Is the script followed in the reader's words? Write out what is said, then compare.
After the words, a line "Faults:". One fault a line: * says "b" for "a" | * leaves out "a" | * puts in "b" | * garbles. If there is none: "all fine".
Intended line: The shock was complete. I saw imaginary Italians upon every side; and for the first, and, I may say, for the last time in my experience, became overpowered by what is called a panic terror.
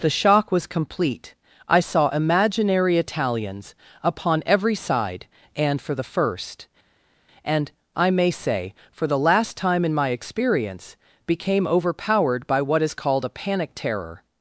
The shock was complete. I saw imaginary Italians upon every side; and for the first, and, I may say, for the last time in my experience, became overpowered by what is called a panic terror.
Faults:
all fine